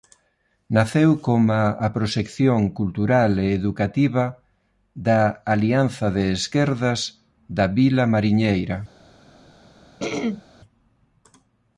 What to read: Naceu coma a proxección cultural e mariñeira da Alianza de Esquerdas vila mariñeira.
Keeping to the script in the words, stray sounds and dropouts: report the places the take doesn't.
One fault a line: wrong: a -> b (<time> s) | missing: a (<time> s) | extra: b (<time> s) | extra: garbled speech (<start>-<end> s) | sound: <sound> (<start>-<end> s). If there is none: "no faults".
wrong: mariñeira -> educativa (3.6 s)
extra: da (7.6 s)
sound: throat clearing (10.0-10.4 s)